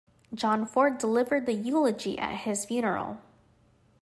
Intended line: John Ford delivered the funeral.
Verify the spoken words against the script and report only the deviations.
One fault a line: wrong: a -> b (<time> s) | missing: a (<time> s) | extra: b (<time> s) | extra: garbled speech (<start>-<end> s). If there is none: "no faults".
extra: eulogy at his (1.5 s)